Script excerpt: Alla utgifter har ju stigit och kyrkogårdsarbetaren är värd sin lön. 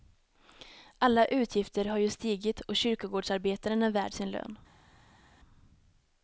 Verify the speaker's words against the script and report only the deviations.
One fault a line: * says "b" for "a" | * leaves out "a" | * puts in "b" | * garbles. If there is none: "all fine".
all fine